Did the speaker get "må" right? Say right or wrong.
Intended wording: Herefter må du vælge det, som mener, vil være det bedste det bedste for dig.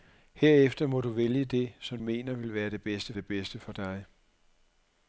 right